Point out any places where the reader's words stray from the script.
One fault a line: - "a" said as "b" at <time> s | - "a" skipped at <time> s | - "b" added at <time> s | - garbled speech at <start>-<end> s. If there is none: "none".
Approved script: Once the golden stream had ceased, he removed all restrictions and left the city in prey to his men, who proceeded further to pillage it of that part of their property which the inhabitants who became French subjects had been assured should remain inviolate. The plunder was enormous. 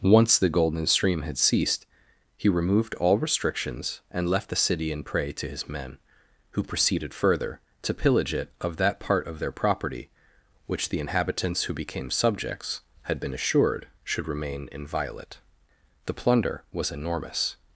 - "French" skipped at 12.1 s